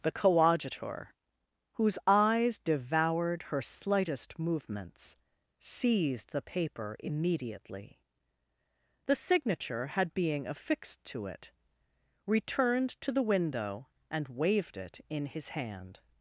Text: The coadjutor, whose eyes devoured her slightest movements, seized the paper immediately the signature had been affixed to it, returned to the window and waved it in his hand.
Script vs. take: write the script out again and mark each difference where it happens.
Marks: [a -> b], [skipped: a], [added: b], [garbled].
The coadjutor, whose eyes devoured her slightest movements, seized the paper immediately the signature had [been -> being] affixed to it, returned to the window and waved it in his hand.